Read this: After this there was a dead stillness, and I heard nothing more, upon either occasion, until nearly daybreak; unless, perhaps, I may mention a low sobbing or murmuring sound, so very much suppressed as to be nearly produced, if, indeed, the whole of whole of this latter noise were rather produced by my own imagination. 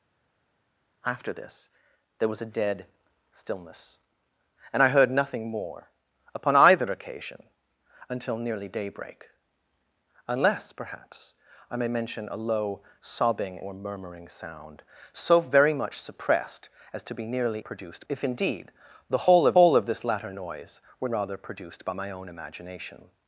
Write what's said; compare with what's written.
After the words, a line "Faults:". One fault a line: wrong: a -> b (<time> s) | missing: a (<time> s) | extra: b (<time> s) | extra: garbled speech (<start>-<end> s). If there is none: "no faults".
After this there was a dead stillness, and I heard nothing more, upon either occasion, until nearly daybreak; unless, perhaps, I may mention a low sobbing or murmuring sound, so very much suppressed as to be nearly produced, if, indeed, the whole of whole of this latter noise were rather produced by my own imagination.
Faults:
no faults